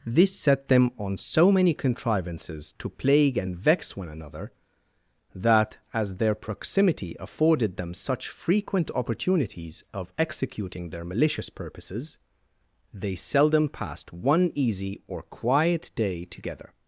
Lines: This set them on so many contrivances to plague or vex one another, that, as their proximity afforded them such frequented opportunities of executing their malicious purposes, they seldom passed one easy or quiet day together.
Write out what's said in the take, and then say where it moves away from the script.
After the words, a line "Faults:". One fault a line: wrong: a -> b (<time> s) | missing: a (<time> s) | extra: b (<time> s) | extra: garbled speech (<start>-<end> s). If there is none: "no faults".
This set them on so many contrivances to plague and vex one another, that, as their proximity afforded them such frequent opportunities of executing their malicious purposes, they seldom passed one easy or quiet day together.
Faults:
wrong: or -> and (3.4 s)
wrong: frequented -> frequent (8.3 s)